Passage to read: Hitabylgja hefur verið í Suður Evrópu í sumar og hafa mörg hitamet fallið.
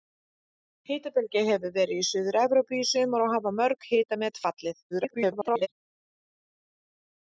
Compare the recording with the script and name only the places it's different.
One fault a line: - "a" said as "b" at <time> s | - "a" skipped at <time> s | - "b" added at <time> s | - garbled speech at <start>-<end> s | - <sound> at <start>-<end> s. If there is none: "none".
- garbled speech at 4.9-5.7 s